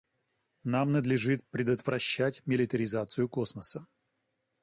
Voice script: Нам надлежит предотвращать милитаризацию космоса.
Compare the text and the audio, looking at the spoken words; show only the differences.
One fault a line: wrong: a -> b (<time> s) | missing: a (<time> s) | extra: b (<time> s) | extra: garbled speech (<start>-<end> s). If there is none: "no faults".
no faults